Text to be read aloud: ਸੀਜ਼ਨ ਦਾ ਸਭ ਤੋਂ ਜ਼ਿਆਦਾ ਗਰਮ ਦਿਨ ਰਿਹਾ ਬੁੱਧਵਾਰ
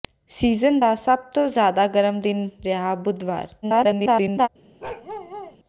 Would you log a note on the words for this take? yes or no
yes